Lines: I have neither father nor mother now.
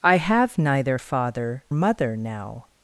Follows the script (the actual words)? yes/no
no